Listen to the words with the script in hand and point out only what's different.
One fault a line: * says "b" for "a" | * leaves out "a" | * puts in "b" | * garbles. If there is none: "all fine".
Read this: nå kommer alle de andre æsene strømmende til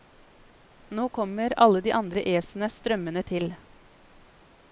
all fine